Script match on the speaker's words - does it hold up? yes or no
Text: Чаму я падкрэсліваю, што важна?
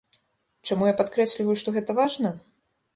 no